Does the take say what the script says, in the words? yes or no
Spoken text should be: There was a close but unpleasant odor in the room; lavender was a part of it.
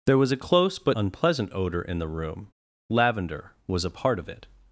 yes